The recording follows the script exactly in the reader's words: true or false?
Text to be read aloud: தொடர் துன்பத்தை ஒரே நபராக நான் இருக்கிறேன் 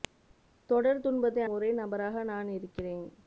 true